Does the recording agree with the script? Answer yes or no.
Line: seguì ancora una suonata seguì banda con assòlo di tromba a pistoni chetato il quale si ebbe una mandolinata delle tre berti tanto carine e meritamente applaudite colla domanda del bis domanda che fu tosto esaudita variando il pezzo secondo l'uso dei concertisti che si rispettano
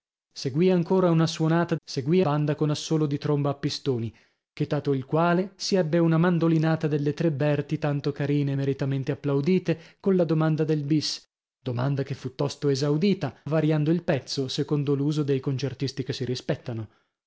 yes